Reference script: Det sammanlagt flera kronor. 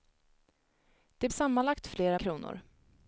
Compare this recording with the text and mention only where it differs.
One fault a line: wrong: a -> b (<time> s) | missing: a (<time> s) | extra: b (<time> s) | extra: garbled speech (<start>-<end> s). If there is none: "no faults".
no faults